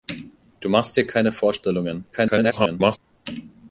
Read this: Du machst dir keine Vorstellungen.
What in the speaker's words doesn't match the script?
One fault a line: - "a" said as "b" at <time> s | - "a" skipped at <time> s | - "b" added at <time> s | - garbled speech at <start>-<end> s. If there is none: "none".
- garbled speech at 2.1-3.0 s